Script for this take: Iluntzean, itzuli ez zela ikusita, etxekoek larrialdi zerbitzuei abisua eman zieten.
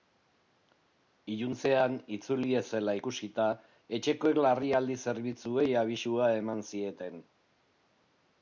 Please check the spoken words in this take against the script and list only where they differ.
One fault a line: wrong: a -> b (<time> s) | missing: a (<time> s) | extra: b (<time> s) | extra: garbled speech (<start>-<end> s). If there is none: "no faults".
no faults